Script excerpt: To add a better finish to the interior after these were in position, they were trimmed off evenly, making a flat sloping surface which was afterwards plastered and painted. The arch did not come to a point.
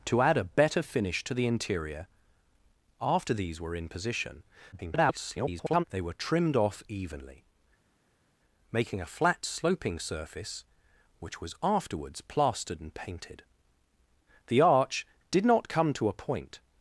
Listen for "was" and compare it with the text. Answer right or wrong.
right